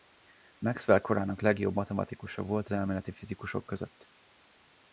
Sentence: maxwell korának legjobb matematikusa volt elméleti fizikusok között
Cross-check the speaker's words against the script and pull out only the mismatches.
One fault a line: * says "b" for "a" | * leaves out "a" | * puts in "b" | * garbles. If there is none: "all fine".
all fine